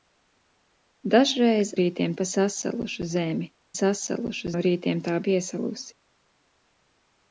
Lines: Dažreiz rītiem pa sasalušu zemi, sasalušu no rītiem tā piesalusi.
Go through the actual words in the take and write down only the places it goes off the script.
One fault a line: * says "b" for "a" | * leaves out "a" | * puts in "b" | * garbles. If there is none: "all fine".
all fine